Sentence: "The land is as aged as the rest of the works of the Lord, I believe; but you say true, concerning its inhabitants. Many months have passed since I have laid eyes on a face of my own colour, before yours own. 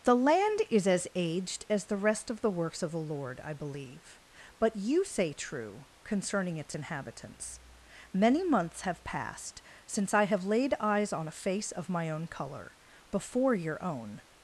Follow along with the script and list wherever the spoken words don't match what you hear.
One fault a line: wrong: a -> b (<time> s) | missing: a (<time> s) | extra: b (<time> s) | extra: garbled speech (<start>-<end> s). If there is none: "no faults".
wrong: yours -> your (13.5 s)